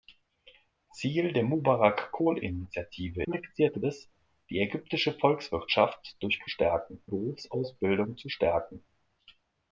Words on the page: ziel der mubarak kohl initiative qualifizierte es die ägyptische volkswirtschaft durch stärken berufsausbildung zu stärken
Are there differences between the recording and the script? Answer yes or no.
no